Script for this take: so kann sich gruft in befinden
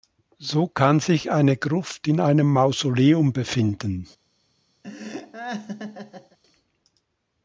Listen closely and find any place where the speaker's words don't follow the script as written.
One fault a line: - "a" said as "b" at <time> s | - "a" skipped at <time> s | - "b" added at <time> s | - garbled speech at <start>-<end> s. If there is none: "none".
- "eine" added at 1.3 s
- "einem mausoleum" added at 2.2 s